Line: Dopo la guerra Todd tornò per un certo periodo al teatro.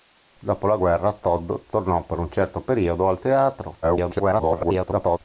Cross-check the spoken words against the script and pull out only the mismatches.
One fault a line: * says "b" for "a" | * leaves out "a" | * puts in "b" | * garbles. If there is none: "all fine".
* garbles